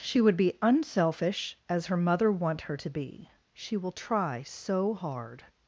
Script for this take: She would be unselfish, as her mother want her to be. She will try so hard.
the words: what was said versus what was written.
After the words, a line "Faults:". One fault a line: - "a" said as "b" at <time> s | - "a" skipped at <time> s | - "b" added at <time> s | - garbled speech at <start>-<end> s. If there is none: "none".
She would be unselfish, as her mother want her to be. She will try so hard.
Faults:
none